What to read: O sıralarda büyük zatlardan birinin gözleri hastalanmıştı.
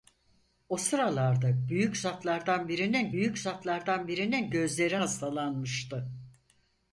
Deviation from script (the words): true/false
true